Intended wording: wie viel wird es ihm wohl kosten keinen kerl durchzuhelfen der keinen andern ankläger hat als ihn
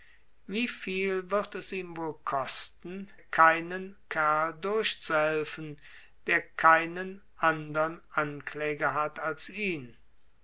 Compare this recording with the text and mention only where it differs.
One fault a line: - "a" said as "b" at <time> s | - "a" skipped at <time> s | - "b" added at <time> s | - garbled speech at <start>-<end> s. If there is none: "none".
none